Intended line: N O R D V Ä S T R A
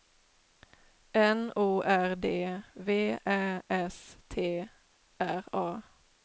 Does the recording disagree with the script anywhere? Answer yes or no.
no